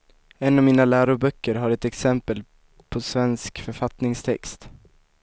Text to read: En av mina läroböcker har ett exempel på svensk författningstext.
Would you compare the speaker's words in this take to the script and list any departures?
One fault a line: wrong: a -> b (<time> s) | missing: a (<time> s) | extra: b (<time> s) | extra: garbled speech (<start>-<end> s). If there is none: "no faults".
no faults